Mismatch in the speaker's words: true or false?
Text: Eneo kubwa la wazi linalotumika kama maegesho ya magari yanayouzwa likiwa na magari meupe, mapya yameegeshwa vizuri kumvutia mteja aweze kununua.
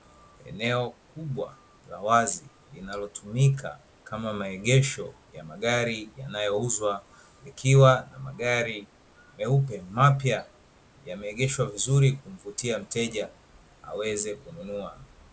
false